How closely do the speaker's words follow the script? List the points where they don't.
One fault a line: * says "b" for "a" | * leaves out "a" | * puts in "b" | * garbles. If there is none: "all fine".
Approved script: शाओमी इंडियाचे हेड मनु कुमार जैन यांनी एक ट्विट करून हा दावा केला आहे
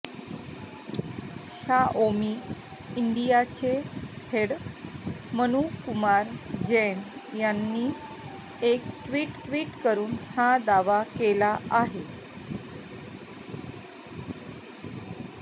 * puts in "ट्विट"